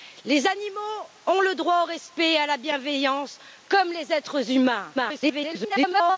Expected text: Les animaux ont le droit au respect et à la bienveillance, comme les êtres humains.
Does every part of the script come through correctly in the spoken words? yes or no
no